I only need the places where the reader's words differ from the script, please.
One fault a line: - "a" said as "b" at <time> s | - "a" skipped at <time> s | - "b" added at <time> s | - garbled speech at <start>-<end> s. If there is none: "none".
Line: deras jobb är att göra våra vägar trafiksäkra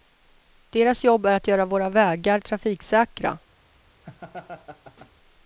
none